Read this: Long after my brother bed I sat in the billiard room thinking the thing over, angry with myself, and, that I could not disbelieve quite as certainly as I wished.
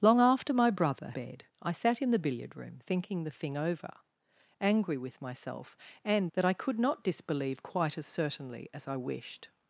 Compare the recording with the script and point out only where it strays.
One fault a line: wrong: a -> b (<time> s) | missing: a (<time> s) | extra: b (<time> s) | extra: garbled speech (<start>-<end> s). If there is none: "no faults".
no faults